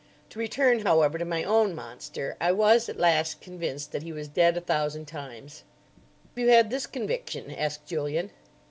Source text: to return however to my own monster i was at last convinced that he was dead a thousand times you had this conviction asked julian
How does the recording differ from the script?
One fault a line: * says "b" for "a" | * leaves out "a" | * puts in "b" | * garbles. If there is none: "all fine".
all fine